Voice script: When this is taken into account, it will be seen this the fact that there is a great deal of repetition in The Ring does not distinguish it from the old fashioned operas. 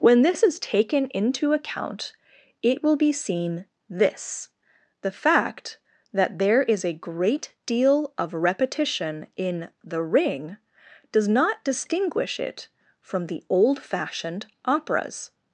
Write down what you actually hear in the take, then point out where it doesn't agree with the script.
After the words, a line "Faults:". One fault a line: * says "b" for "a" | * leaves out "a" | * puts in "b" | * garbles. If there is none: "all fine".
When this is taken into account, it will be seen this the fact that there is a great deal of repetition in The Ring does not distinguish it from the old fashioned operas.
Faults:
all fine